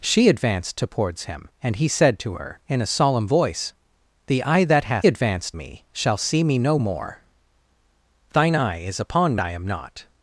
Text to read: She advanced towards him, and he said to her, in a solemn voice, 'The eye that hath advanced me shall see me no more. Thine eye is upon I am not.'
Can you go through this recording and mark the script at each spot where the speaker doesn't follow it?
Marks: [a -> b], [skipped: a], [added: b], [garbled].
She advanced towards him, and he said to her, in a solemn voice, 'The eye that hath advanced me shall see me no more. Thine eye is upon I am not.'